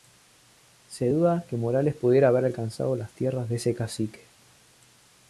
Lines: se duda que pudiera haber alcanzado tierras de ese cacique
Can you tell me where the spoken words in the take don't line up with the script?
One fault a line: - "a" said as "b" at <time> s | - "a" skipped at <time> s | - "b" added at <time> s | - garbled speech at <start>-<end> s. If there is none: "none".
- "morales" added at 1.6 s
- "las" added at 3.0 s